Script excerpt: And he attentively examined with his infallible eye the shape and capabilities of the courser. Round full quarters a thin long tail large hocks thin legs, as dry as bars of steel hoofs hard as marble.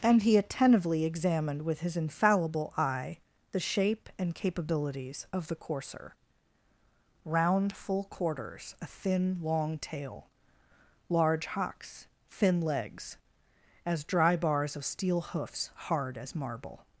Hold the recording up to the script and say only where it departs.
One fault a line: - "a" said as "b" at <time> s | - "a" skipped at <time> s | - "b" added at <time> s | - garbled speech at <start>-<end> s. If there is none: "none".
- "as" skipped at 14.4 s